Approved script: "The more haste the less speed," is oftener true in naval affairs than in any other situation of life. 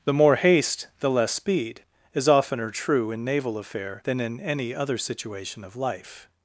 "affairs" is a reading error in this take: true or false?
true